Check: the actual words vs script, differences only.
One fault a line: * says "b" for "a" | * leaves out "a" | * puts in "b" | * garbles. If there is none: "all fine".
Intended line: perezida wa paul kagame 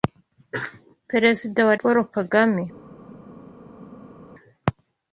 all fine